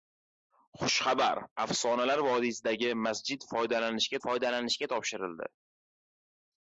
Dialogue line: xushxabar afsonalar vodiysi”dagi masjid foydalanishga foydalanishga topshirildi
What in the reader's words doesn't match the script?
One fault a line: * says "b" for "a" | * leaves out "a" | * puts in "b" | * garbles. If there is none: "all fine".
all fine